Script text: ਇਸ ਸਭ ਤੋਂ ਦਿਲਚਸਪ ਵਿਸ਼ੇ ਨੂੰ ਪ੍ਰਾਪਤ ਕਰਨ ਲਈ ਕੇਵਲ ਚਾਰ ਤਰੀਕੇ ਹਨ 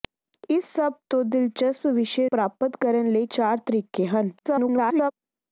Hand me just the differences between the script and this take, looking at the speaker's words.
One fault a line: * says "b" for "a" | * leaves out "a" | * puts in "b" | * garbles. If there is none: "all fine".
* leaves out "ਨੂੰ"
* leaves out "ਕੇਵਲ"
* garbles